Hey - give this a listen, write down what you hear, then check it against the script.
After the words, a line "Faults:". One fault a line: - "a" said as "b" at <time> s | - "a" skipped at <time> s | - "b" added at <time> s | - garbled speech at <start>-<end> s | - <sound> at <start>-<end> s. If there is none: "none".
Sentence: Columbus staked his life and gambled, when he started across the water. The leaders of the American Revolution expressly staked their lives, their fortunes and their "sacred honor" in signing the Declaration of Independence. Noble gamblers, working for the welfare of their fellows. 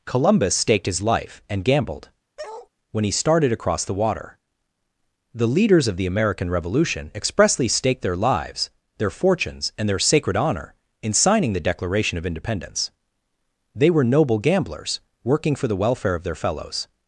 Columbus staked his life and gambled, when he started across the water. The leaders of the American Revolution expressly staked their lives, their fortunes and their "sacred honor" in signing the Declaration of Independence. They were noble gamblers, working for the welfare of their fellows.
Faults:
- bark at 2.4-2.7 s
- "They were" added at 13.7 s